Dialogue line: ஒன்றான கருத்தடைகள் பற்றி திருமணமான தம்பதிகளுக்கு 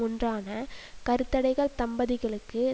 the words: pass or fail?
fail